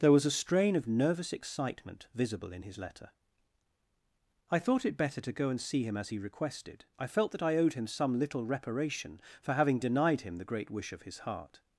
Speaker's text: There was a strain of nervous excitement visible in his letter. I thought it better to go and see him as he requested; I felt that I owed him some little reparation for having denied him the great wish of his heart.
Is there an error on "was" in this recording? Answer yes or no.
no